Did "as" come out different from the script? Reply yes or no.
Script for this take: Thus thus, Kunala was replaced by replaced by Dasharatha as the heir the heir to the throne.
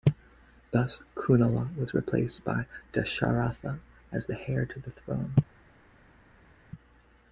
no